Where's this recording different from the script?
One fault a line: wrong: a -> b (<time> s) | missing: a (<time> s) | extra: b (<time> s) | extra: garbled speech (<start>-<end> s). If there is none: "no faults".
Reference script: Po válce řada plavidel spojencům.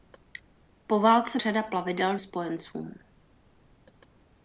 no faults